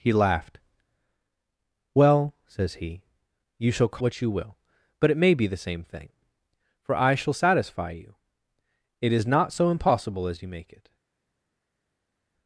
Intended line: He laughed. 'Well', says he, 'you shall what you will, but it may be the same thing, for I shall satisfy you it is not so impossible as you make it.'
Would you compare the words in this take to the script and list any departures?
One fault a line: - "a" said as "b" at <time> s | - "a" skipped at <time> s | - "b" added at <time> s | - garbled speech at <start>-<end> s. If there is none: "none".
none